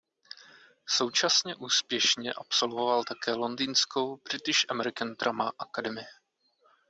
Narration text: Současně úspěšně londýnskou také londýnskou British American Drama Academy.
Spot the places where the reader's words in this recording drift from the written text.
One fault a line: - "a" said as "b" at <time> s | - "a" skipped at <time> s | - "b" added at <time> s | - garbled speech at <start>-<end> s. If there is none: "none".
- "londýnskou" said as "absolvoval" at 2.3 s